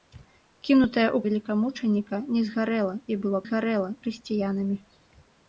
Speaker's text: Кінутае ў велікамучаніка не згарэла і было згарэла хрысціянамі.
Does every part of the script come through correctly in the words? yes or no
yes